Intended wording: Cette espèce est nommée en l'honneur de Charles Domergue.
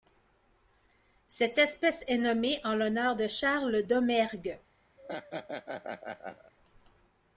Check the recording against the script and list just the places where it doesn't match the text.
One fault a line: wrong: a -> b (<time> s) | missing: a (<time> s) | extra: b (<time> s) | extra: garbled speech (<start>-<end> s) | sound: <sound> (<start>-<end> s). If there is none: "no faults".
sound: laugh (5.0-6.5 s)